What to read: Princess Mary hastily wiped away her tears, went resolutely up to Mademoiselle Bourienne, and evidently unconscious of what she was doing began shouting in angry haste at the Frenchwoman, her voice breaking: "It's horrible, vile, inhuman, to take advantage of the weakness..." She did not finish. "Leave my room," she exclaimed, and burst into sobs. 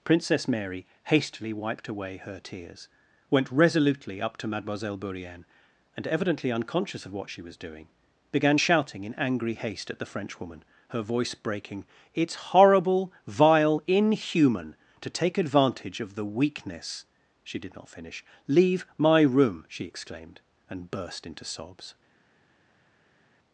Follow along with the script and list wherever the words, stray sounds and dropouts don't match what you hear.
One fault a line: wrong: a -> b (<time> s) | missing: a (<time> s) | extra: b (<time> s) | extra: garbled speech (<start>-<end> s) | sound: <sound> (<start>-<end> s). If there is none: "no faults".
no faults